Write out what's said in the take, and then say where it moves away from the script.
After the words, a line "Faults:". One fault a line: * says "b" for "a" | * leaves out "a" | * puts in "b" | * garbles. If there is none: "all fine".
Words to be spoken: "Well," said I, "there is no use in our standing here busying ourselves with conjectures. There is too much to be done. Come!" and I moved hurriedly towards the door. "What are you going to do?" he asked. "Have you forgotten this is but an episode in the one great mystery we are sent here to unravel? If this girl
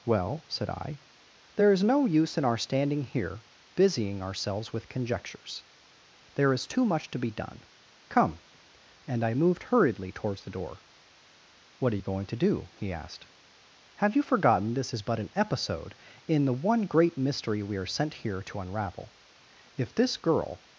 "Well," said I, "there is no use in our standing here busying ourselves with conjectures. There is too much to be done. Come!" and I moved hurriedly towards the door. "What are you going to do?" he asked. "Have you forgotten this is but an episode in the one great mystery we are sent here to unravel? If this girl
Faults:
all fine